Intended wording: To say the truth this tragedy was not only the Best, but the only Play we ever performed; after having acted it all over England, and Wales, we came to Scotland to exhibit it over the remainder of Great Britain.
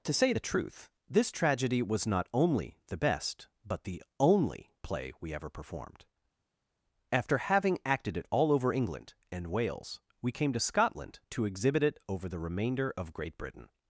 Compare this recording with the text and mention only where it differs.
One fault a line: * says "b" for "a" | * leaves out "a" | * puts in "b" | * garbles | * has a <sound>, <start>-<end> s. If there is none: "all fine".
all fine